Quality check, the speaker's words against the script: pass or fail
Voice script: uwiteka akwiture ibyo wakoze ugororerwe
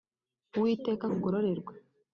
fail